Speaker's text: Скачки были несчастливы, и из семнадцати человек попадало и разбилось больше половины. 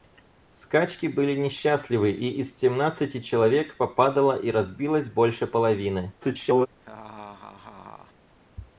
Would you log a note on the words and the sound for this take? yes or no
yes